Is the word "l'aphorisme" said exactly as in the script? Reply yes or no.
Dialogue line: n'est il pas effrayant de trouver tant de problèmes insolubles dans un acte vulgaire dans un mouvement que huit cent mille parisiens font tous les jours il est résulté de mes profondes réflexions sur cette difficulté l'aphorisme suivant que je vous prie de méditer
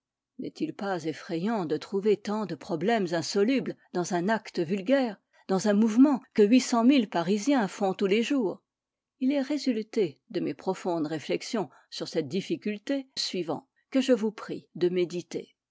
no